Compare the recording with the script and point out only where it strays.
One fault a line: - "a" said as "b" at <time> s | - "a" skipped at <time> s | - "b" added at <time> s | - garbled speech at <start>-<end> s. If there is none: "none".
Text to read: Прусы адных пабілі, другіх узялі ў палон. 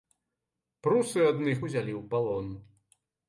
- "пабілі другіх" skipped at 1.6 s